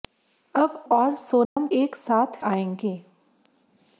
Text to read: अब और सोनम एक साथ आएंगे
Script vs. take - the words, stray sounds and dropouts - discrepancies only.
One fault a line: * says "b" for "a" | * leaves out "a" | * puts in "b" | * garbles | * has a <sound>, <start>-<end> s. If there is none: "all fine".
* has a dropout, 1.4-1.6 s